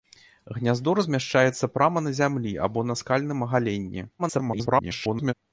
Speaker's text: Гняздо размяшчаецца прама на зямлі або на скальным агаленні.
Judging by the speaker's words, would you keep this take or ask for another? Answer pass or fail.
fail